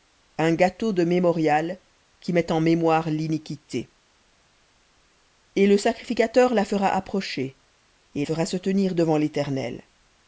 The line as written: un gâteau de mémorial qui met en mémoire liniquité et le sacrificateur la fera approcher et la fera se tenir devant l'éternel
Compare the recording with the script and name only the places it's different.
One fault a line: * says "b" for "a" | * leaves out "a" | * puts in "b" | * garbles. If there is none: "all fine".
* leaves out "la"